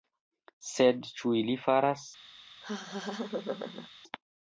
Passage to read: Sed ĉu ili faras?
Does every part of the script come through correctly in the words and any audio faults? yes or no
no